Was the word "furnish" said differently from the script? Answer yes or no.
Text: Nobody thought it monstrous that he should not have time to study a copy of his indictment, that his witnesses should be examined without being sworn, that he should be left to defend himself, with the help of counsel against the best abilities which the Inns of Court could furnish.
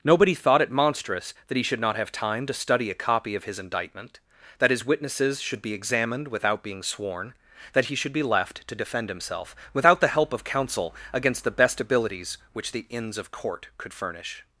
no